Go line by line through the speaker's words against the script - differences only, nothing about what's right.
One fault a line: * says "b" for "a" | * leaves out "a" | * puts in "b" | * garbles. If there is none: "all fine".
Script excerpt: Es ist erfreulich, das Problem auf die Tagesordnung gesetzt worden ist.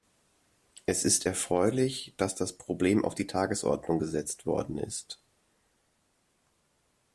* puts in "dass"